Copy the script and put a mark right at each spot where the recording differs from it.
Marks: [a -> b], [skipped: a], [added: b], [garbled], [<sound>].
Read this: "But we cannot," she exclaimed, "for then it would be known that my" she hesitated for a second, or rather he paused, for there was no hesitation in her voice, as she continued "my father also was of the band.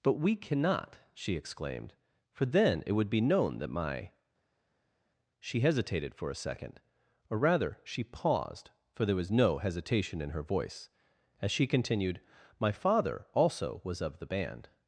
"But we cannot," she exclaimed, "for then it would be known that my" she hesitated for a second, or rather [he -> she] paused, for there was no hesitation in her voice, as she continued "my father also was of the band.